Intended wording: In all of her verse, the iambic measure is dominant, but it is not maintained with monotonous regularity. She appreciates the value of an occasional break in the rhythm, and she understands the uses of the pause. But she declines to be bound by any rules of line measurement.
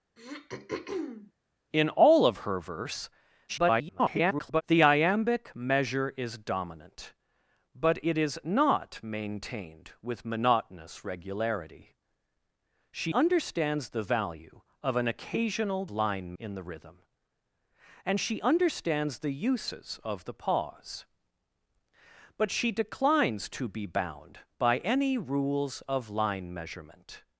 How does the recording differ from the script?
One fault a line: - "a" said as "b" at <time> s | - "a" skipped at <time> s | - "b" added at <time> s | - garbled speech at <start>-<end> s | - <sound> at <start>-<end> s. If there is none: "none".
- throat clearing at 0.2-1.3 s
- garbled speech at 3.5-4.6 s
- "appreciates" said as "understands" at 13.1 s
- "break" said as "line" at 15.9 s